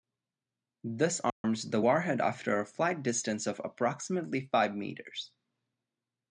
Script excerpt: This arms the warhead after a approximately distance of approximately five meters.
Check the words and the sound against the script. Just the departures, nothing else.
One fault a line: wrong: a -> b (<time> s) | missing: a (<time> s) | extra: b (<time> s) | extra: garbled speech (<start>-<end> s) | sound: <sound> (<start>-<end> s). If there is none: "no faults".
sound: dropout (1.3-1.4 s)
wrong: approximately -> flight (2.7 s)